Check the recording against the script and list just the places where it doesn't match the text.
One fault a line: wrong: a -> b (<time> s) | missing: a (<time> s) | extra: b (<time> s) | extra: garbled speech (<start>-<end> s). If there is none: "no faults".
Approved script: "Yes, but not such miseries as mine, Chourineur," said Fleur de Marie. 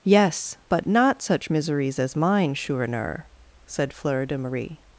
no faults